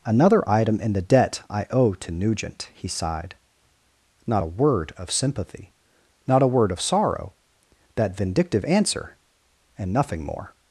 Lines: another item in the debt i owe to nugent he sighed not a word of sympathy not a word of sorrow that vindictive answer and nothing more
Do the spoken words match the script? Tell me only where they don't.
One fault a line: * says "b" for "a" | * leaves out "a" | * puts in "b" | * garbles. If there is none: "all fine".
all fine